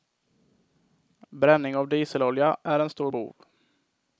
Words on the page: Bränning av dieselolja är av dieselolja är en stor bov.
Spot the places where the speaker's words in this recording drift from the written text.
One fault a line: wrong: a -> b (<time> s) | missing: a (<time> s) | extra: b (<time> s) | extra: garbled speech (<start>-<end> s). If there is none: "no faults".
missing: av dieselolja är (2.8 s)